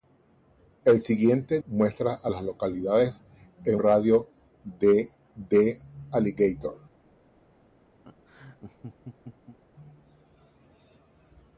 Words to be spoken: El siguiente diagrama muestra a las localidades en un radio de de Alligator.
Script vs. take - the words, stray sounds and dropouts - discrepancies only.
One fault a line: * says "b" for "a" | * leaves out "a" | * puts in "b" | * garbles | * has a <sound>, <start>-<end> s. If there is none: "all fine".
* leaves out "diagrama"
* leaves out "un"
* has a laugh, 8.0-9.6 s